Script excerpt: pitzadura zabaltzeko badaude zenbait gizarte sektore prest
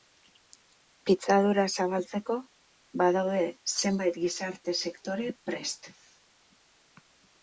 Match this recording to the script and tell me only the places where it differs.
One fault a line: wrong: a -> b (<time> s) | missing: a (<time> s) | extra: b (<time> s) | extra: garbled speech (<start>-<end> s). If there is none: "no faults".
no faults